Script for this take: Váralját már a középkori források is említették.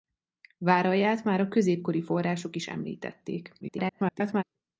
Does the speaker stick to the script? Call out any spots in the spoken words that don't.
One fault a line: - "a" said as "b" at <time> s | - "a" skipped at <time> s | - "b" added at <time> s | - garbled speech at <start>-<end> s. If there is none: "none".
- garbled speech at 3.6-4.4 s